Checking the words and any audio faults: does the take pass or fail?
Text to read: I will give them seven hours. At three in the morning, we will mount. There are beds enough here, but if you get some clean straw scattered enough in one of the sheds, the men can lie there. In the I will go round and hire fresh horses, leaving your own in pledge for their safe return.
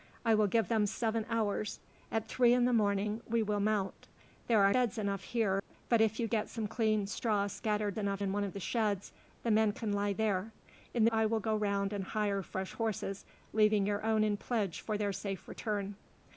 fail